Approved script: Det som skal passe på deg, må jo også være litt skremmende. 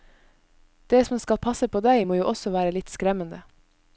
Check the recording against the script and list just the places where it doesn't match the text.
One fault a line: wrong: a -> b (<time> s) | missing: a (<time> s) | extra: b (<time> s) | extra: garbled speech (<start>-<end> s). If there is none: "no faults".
no faults